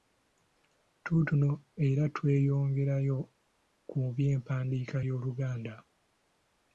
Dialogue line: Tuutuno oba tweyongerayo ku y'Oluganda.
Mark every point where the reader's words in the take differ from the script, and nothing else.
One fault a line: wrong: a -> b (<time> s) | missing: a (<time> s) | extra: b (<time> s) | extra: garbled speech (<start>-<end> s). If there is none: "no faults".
wrong: oba -> era (1.9 s)
extra: by'empandiika (4.2 s)